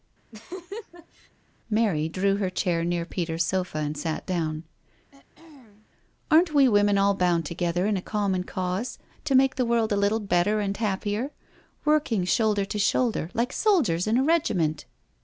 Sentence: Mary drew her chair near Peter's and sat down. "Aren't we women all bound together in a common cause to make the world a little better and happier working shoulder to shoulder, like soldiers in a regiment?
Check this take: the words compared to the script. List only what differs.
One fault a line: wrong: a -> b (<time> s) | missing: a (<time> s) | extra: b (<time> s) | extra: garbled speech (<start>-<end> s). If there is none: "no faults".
extra: sofa (3.4 s)